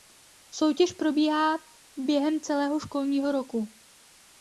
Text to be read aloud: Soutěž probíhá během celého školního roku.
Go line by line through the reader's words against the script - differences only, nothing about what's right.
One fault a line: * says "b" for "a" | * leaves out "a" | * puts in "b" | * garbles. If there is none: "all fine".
all fine